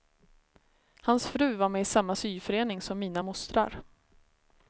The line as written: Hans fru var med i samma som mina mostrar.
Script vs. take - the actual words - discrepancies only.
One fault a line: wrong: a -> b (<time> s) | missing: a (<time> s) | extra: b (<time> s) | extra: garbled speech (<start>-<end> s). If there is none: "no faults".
extra: syförening (2.1 s)